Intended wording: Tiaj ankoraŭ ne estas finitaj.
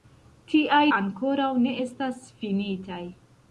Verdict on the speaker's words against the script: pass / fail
pass